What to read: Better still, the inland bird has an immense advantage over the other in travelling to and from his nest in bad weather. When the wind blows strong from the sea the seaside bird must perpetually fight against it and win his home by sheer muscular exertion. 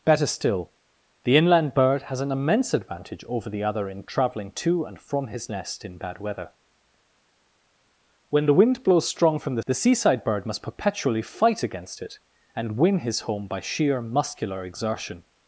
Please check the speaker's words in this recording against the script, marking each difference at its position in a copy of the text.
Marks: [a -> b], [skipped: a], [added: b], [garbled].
Better still, the inland bird has an immense advantage over the other in travelling to and from his nest in bad weather. When the wind blows strong from the [skipped: sea] the seaside bird must perpetually fight against it and win his home by sheer muscular exertion.